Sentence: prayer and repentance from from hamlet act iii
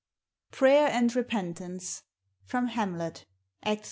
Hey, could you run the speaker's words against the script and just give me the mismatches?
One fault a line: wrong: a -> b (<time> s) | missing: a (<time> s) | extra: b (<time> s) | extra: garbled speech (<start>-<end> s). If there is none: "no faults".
missing: from (2.7 s)